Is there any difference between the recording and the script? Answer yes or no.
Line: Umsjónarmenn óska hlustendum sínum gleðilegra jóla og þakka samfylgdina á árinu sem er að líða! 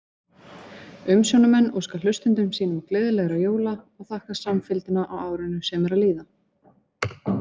no